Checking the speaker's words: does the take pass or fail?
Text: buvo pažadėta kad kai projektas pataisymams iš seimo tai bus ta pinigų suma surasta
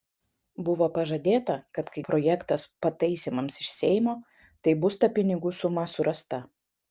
pass